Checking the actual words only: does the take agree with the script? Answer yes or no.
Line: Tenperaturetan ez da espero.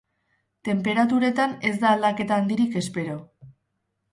no